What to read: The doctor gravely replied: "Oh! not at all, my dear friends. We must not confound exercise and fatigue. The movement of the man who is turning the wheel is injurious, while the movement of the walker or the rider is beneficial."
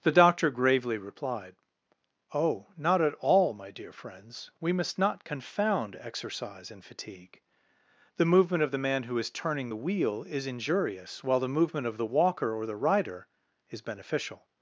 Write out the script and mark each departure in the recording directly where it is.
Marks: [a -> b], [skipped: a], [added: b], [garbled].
The doctor gravely replied: "Oh! not at all, my dear friends. We must not confound exercise and fatigue. The movement of the man who is turning the wheel is injurious, while the movement of the walker or the rider is beneficial."